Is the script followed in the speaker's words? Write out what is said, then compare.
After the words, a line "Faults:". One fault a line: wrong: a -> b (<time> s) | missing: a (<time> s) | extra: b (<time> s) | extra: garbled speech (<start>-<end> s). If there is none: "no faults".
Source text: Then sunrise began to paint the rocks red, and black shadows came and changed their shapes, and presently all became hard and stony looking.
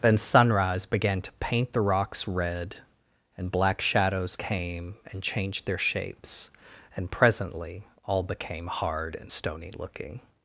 Then sunrise began to paint the rocks red, and black shadows came and changed their shapes, and presently all became hard and stony looking.
Faults:
no faults